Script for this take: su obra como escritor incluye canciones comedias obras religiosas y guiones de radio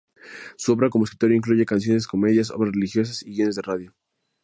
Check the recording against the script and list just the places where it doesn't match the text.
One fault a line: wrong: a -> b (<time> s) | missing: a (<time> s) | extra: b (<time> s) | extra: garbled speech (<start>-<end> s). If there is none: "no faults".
no faults